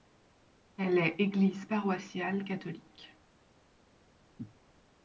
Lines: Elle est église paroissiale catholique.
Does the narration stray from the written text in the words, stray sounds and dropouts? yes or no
no